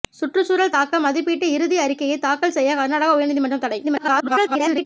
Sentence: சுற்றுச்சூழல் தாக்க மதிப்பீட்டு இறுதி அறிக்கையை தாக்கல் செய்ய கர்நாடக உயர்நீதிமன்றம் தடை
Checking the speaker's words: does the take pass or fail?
fail